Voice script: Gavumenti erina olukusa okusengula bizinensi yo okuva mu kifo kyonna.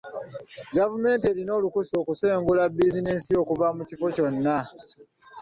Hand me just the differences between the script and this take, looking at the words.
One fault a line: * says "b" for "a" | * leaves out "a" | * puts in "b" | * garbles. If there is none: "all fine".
all fine